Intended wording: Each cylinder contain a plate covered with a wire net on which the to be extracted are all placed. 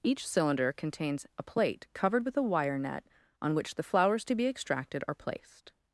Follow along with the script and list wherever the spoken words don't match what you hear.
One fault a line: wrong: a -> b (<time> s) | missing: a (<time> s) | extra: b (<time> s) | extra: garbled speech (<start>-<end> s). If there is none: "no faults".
wrong: contain -> contains (0.7 s)
extra: flowers (3.8 s)
missing: all (5.1 s)